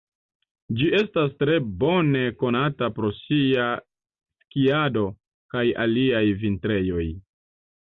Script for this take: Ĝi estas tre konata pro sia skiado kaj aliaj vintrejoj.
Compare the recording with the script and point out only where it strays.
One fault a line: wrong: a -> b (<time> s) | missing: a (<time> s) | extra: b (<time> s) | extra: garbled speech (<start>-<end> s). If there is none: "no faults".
extra: bone (1.8 s)